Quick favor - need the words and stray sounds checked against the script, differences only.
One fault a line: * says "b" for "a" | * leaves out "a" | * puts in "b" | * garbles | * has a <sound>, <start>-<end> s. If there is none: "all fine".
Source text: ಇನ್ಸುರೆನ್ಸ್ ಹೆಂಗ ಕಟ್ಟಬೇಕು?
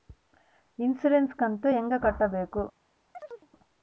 * puts in "ಕಂತು"
* has a chirp, 3.1-3.5 s